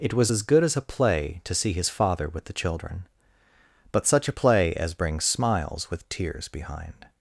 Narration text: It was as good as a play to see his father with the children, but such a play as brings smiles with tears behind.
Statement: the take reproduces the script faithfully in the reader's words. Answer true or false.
true